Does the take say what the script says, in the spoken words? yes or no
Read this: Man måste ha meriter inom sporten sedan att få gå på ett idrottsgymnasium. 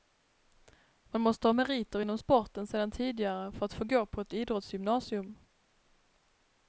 no